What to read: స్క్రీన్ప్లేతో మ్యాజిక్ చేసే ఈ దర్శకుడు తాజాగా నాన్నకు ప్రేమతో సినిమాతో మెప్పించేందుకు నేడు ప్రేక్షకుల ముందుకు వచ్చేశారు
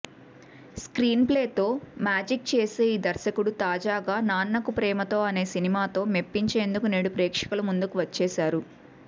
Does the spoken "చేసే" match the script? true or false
true